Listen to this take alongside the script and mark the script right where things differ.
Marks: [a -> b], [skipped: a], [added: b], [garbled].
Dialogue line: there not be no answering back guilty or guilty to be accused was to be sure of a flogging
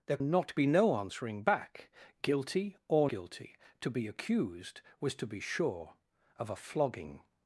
there not be no answering back guilty or guilty to be accused was to be sure of a flogging